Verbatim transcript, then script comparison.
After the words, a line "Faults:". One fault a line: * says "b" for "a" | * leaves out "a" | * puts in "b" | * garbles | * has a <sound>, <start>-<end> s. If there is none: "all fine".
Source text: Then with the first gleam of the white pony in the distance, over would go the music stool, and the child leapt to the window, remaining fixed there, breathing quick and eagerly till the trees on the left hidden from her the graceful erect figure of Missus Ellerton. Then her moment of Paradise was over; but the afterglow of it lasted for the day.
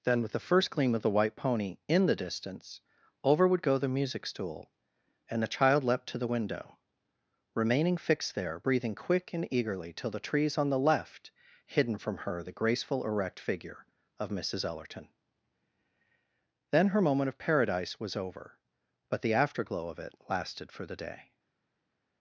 Then with the first gleam of the white pony in the distance, over would go the music stool, and the child leapt to the window, remaining fixed there, breathing quick and eagerly till the trees on the left hidden from her the graceful erect figure of Missus Ellerton. Then her moment of Paradise was over; but the afterglow of it lasted for the day.
Faults:
all fine